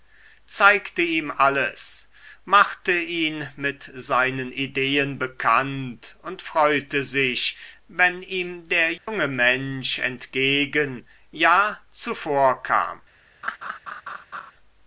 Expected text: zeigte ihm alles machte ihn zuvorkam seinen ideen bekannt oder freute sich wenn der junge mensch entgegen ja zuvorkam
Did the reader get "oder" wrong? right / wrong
wrong